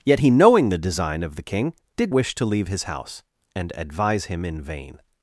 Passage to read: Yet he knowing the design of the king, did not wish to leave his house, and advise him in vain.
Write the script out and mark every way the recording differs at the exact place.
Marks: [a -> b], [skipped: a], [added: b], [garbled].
Yet he knowing the design of the king, did [skipped: not] wish to leave his house, and advise him in vain.